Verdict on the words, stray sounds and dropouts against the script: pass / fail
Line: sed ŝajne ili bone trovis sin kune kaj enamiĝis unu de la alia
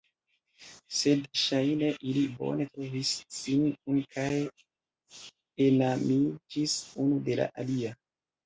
pass